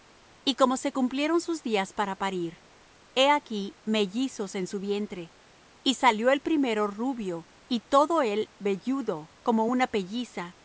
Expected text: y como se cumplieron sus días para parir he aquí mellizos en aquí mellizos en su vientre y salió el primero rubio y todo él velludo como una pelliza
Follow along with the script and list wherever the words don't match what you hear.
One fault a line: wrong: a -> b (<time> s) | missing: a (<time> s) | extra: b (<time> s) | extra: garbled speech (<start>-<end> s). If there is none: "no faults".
missing: aquí mellizos en (4.7 s)